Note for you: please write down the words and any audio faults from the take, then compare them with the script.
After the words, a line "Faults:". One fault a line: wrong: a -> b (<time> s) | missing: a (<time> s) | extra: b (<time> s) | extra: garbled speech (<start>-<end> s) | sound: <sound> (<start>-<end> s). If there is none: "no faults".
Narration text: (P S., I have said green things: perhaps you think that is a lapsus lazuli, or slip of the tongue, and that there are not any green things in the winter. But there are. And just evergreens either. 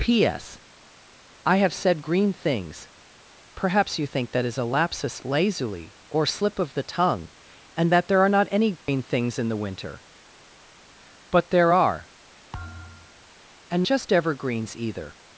(P S., I have said green things: perhaps you think that is a lapsus lazuli, or slip of the tongue, and that there are not any green things in the winter. But there are. And just evergreens either.
Faults:
sound: dropout (8.8-8.9 s)
sound: thud (12.5-13.3 s)